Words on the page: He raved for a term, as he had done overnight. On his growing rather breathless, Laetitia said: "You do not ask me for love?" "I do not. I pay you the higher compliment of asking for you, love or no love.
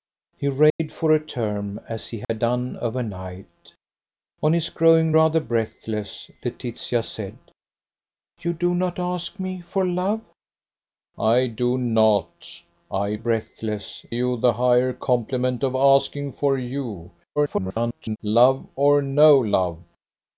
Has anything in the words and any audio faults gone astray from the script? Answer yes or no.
yes